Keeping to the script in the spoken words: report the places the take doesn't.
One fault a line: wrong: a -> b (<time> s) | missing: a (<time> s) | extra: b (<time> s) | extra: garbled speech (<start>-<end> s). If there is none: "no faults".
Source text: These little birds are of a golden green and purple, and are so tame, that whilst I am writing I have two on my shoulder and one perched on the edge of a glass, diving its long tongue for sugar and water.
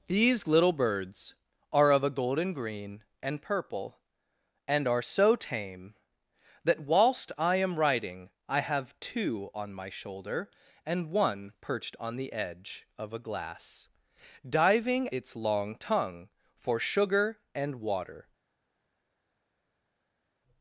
no faults